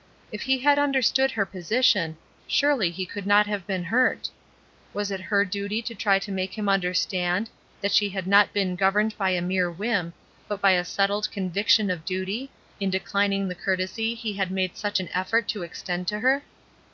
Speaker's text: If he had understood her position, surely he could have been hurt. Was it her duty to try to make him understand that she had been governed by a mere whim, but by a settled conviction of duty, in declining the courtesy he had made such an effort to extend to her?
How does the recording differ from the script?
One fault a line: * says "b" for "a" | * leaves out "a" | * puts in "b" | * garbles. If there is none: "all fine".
* puts in "not"
* puts in "not"